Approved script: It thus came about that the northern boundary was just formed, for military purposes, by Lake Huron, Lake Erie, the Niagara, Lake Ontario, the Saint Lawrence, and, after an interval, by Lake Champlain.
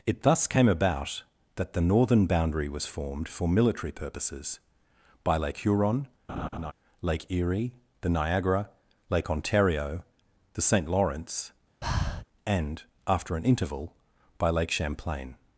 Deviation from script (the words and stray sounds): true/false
true